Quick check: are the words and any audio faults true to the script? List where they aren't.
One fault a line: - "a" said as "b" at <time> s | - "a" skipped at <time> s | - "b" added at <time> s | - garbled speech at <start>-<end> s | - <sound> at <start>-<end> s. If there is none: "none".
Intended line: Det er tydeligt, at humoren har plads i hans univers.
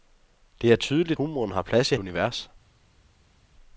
- "at" skipped at 1.2 s
- "hans" skipped at 1.9 s